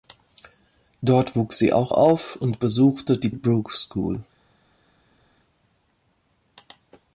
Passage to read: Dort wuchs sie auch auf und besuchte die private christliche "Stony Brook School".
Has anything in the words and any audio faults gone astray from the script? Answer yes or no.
yes